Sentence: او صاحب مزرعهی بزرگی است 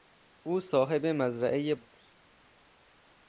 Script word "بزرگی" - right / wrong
wrong